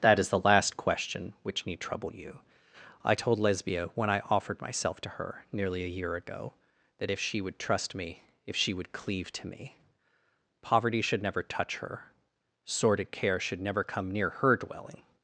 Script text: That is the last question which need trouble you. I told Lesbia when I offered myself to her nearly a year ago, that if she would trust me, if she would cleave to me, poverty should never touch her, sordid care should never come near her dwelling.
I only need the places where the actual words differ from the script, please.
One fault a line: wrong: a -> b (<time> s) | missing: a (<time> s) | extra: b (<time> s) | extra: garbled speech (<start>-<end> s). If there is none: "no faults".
no faults